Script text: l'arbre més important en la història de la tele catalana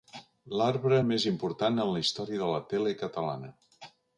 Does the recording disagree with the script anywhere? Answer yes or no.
no